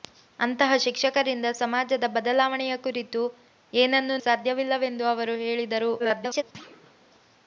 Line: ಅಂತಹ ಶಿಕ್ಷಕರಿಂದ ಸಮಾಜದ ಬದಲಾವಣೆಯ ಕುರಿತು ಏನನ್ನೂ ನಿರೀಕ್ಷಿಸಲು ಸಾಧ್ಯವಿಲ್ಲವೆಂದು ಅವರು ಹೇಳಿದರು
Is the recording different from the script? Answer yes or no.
yes